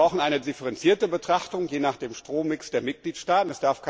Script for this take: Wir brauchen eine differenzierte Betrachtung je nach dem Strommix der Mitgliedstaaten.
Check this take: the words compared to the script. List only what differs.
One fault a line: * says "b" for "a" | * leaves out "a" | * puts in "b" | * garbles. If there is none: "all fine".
all fine